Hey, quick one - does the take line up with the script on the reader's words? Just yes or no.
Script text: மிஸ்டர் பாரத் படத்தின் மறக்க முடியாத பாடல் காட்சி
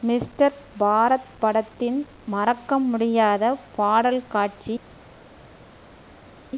yes